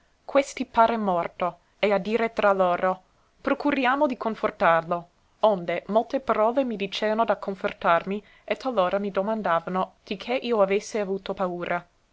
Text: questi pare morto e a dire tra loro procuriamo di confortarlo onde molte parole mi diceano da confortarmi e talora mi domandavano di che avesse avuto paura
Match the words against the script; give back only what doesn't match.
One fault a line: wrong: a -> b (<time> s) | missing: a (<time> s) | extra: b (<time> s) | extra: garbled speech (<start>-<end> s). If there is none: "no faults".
extra: io (10.4 s)